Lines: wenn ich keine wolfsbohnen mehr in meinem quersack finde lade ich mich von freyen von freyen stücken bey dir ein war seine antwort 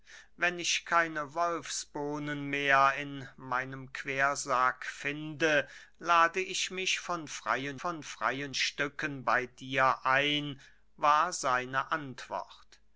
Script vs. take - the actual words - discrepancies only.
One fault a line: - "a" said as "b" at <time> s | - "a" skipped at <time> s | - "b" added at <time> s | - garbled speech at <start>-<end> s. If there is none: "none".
none